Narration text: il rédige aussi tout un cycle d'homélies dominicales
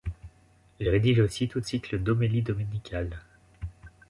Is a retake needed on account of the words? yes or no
yes